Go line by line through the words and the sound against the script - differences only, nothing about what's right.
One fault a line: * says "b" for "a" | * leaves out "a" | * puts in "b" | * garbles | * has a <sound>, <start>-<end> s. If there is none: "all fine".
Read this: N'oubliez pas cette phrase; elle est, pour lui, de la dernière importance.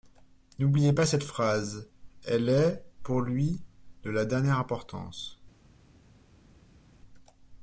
all fine